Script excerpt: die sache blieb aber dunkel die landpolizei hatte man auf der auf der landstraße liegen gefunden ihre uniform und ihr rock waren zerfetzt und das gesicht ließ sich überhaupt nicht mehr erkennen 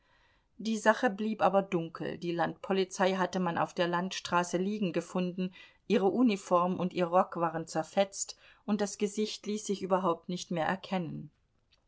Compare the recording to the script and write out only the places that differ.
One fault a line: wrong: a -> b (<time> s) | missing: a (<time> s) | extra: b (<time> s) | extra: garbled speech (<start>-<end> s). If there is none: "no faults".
missing: auf der (3.9 s)